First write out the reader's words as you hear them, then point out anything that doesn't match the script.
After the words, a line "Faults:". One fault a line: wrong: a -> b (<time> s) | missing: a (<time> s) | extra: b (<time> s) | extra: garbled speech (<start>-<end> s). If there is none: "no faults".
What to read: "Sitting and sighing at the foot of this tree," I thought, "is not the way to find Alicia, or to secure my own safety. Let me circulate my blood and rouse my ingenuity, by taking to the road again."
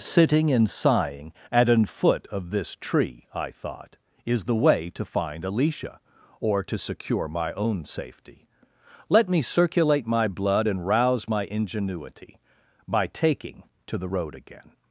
"Sitting and sighing at an foot of this tree," I thought, "is the way to find Alicia, or to secure my own safety. Let me circulate my blood and rouse my ingenuity, by taking to the road again."
Faults:
wrong: the -> an (1.7 s)
missing: not (4.5 s)